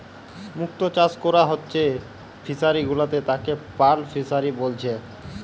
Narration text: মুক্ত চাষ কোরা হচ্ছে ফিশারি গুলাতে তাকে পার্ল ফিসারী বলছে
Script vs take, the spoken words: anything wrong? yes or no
no